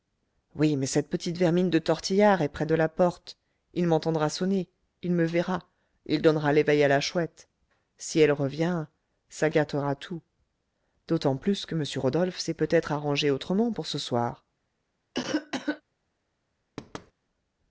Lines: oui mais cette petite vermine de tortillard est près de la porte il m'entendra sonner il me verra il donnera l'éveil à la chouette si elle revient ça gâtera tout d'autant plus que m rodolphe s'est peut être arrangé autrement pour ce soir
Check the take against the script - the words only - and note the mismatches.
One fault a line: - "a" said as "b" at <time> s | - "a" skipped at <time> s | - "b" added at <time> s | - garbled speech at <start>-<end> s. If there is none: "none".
none